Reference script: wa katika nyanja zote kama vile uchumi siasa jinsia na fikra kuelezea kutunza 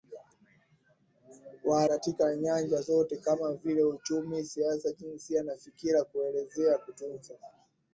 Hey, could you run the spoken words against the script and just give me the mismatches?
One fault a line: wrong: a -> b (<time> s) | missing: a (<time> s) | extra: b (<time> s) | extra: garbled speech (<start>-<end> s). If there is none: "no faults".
no faults